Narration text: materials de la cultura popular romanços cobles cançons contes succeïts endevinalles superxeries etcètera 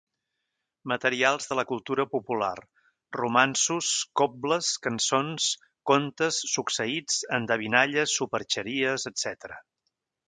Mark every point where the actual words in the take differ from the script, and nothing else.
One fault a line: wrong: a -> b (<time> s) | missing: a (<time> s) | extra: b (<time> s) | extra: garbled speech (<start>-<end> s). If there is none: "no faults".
no faults